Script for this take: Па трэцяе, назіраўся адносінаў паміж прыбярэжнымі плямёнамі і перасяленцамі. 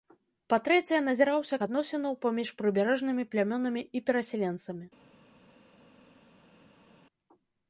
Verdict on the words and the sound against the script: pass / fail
pass